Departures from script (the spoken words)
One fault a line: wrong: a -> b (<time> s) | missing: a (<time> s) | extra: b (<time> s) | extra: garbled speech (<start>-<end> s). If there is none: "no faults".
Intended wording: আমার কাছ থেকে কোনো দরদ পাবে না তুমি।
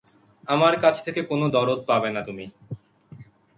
no faults